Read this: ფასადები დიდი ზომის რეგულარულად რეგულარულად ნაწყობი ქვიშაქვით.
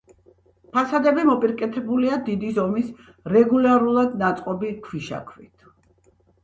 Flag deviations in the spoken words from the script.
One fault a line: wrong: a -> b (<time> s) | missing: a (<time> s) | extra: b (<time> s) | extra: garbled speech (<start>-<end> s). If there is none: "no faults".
extra: მოპირკეთებულია (1.3 s)
missing: რეგულარულად (4.2 s)